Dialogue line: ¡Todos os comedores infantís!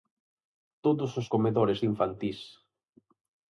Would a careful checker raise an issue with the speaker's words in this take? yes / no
no